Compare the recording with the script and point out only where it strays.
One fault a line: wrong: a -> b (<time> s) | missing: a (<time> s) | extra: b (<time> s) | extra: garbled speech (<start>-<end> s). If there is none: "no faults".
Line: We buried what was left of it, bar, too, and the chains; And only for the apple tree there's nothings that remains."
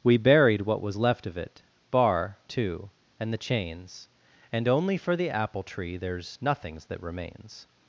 no faults